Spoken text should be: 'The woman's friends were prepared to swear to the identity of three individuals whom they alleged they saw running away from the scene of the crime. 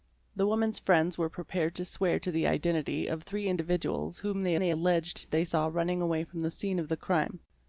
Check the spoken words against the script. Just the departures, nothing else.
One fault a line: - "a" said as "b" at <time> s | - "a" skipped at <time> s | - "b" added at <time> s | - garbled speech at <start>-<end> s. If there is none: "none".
- "they" added at 4.6 s